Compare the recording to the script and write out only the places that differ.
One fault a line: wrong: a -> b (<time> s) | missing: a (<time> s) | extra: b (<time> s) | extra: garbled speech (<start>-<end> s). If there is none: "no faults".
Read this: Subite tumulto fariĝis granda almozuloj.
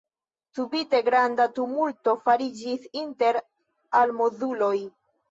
extra: granda (1.1 s)
wrong: granda -> inter (3.0 s)